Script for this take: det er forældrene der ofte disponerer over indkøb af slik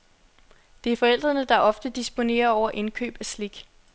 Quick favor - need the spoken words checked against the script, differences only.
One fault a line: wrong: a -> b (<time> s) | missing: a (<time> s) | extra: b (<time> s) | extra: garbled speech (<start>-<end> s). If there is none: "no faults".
no faults